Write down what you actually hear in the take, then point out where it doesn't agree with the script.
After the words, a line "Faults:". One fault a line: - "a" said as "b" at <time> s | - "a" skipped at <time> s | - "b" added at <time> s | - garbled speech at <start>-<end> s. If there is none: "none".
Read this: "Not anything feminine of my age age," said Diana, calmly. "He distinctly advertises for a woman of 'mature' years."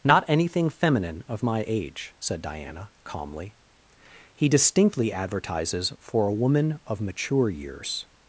"Not anything feminine of my age," said Diana, calmly. "He distinctly advertises for a woman of 'mature' years."
Faults:
- "age" skipped at 2.1 s